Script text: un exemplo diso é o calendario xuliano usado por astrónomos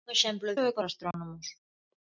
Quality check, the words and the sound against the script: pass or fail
fail